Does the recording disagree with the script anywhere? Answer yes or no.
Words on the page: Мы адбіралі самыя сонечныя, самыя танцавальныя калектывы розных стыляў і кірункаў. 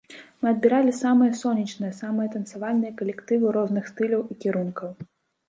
no